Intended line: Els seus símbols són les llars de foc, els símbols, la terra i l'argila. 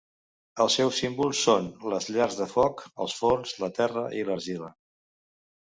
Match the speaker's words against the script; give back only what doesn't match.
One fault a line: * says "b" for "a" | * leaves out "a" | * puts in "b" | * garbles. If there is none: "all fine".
* says "forns" for "símbols"